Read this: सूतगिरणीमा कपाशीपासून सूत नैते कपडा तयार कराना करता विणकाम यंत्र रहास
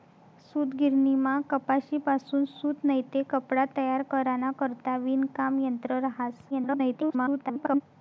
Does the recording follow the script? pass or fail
fail